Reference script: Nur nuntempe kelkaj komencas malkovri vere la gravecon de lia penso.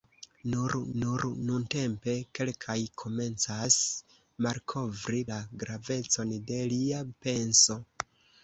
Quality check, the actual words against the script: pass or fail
fail